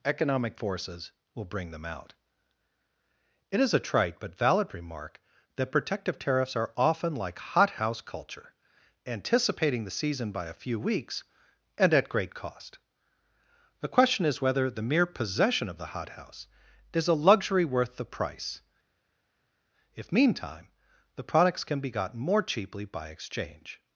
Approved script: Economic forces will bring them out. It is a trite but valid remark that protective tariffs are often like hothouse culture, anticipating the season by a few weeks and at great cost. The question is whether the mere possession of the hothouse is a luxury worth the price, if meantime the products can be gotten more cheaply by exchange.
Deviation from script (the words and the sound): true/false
false